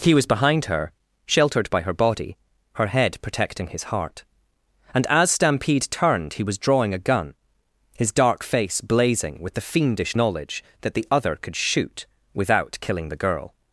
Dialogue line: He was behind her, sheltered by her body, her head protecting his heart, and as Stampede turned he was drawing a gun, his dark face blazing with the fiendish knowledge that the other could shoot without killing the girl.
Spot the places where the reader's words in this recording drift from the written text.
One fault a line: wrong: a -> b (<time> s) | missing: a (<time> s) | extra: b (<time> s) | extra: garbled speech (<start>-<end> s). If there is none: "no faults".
no faults